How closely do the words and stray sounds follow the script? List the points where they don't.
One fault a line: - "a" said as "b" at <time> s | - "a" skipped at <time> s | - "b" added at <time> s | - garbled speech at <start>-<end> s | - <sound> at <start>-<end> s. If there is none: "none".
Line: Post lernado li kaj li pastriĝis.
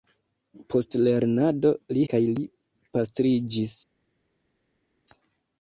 none